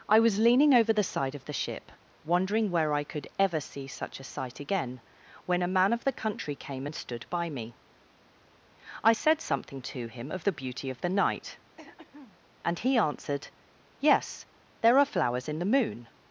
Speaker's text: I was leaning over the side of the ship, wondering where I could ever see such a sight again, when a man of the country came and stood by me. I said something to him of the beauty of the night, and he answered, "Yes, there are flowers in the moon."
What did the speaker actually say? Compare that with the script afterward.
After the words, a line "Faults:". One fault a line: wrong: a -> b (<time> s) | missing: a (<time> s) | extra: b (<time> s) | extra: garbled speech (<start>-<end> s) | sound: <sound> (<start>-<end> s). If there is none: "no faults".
I was leaning over the side of the ship, wondering where I could ever see such a sight again, when a man of the country came and stood by me. I said something to him of the beauty of the night, and he answered, "Yes, there are flowers in the moon."
Faults:
sound: throat clearing (11.8-12.4 s)